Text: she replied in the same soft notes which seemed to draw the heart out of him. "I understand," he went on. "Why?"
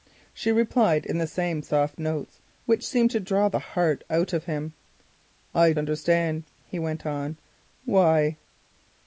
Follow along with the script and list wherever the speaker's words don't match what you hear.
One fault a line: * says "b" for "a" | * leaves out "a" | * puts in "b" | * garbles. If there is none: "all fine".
all fine